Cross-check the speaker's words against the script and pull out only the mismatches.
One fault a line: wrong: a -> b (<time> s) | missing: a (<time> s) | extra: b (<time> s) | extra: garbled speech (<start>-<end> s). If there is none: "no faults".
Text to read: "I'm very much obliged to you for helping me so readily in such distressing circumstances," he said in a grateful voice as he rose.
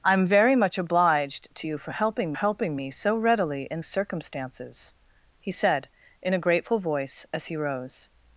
extra: helping (2.3 s)
missing: such distressing (3.8 s)